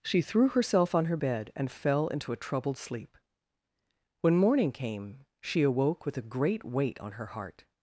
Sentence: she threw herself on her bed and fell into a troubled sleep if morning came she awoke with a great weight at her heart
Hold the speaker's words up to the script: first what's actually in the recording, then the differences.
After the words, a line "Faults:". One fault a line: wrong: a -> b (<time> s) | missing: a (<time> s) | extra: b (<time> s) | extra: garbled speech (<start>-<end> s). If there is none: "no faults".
she threw herself on her bed and fell into a troubled sleep when morning came she awoke with a great weight on her heart
Faults:
wrong: if -> when (4.2 s)
wrong: at -> on (7.0 s)